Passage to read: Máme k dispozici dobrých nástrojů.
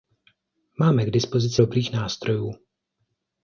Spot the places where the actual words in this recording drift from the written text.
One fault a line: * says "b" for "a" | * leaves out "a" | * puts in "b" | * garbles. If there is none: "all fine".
all fine